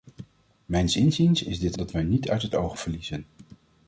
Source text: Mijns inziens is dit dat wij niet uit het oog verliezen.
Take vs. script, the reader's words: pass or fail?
pass